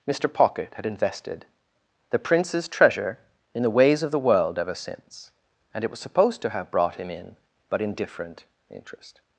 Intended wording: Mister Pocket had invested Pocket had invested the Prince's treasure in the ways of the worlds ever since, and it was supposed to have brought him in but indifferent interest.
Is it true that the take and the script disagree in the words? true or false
true